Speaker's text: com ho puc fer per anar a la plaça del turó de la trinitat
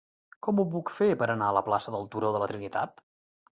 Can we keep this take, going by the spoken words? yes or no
yes